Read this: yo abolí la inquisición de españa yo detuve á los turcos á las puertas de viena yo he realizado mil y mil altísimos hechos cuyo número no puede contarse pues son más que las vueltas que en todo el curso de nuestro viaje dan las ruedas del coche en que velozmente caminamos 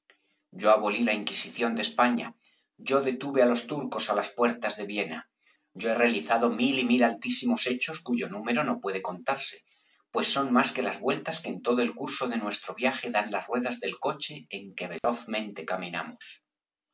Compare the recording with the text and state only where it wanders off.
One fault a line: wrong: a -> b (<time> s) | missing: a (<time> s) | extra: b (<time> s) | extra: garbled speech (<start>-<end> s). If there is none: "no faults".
no faults